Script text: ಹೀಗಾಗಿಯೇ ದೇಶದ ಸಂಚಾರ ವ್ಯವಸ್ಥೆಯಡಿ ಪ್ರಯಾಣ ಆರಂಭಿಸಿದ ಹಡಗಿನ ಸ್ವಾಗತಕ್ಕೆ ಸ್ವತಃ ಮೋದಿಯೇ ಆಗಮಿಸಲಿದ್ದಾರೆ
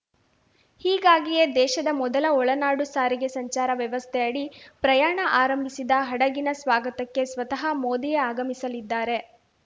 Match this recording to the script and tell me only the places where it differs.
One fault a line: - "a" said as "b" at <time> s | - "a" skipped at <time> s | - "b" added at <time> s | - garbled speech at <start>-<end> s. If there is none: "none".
- "ಮೊದಲ ಒಳನಾಡು ಸಾರಿಗೆ" added at 2.0 s